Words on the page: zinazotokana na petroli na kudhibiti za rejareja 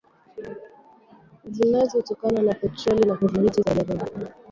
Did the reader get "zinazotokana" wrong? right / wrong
right